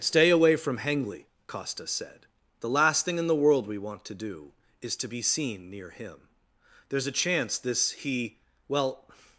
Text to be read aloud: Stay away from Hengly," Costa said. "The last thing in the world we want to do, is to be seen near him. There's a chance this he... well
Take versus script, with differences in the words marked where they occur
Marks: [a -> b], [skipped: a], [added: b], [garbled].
Stay away from Hengly," Costa said. "The last thing in the world we want to do, is to be seen near him. There's a chance this he... well